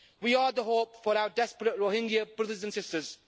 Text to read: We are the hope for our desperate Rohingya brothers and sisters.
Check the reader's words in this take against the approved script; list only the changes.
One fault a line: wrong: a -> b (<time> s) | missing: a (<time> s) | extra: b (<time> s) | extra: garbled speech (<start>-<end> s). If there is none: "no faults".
no faults